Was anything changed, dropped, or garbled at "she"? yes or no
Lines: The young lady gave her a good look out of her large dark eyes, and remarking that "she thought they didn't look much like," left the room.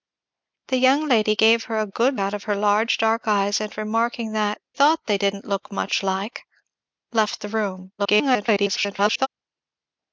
yes